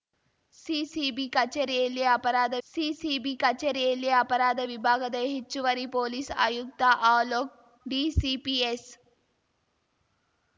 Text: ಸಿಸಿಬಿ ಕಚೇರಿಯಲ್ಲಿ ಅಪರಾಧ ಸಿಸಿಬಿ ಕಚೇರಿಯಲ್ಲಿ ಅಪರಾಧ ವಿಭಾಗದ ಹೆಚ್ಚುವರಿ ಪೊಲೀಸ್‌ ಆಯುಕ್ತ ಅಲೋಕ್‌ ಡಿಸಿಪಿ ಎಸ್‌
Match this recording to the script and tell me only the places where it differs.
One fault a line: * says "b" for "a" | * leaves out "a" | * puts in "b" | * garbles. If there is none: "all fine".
all fine